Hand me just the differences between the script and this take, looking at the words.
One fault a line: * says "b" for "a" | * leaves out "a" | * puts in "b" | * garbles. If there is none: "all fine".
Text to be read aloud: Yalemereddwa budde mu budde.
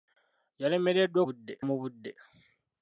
all fine